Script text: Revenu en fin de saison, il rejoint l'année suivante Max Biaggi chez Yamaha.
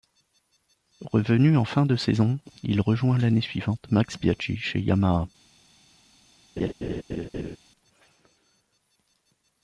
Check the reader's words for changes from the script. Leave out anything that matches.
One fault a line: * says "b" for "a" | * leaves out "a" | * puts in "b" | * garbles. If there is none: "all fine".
all fine